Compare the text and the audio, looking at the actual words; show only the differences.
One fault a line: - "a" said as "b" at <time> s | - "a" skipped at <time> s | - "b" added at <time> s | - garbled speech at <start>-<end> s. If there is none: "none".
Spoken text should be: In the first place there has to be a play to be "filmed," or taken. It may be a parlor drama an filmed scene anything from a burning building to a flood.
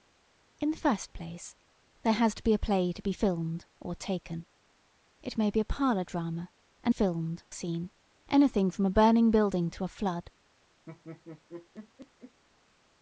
none